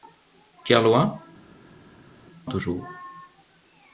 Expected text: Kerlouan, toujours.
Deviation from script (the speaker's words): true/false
false